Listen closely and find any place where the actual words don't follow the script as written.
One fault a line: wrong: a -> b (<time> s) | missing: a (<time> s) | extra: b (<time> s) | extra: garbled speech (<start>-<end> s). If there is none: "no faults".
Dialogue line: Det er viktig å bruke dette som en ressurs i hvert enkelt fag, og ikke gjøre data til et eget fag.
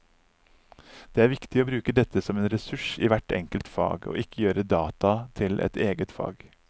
no faults